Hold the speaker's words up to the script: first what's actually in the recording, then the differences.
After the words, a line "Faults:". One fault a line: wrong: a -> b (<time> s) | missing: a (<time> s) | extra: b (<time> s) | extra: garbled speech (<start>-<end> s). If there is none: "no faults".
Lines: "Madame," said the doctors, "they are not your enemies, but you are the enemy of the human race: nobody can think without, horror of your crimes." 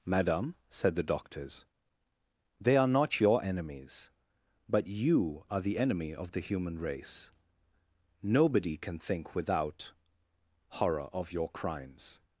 "Madame," said the doctors, "they are not your enemies, but you are the enemy of the human race: nobody can think without, horror of your crimes."
Faults:
no faults